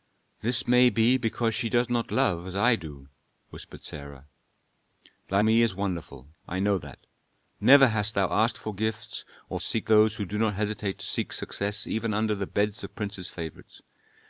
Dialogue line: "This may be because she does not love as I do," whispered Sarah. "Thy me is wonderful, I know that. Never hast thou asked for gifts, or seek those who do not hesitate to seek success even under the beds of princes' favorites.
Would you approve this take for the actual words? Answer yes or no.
yes